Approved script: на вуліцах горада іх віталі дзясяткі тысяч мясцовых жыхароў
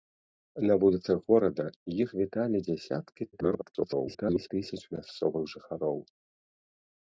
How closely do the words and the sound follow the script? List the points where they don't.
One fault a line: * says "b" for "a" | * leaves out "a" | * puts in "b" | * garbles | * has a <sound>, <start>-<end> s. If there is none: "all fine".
* garbles